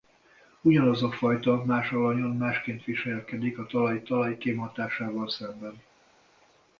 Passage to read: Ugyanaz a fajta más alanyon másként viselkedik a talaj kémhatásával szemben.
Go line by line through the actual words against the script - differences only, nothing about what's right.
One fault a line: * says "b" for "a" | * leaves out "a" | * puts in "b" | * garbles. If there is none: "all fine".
* puts in "talaj"